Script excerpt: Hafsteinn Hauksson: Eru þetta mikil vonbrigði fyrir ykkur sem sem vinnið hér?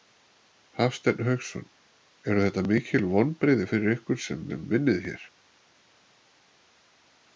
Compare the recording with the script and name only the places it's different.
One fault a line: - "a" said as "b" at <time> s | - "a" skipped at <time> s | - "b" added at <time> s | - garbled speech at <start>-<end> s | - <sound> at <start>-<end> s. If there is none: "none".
none